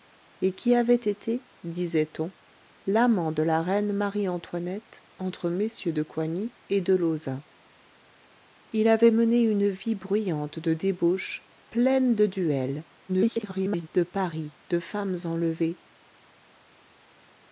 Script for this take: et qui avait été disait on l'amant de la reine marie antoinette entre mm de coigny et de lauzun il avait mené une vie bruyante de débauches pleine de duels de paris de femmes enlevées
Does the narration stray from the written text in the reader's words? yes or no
yes